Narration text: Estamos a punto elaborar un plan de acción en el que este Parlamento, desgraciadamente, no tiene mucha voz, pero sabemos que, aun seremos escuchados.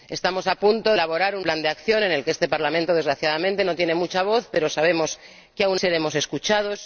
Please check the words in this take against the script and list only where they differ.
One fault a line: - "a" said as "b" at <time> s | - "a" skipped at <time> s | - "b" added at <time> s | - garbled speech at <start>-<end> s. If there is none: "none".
none